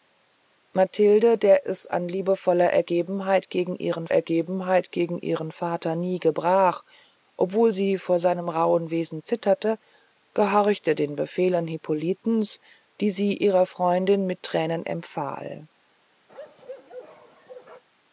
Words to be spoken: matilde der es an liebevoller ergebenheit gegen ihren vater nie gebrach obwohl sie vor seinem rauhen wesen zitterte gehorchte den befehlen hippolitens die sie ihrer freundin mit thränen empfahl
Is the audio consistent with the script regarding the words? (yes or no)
no